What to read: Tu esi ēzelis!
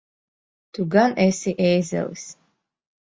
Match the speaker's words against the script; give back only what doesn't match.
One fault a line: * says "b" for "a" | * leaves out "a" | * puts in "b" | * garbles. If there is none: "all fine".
* puts in "gan"